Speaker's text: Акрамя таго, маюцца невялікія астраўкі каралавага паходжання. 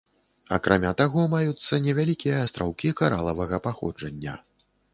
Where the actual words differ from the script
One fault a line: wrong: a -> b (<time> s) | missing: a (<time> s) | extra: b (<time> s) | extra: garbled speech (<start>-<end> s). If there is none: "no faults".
no faults